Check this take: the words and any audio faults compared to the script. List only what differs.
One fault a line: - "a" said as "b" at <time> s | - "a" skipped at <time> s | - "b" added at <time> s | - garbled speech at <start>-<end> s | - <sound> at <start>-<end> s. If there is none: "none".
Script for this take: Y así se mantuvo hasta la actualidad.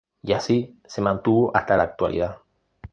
none